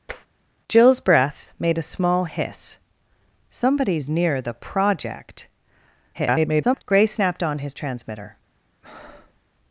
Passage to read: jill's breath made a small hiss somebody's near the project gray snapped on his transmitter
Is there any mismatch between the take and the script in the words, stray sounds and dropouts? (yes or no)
yes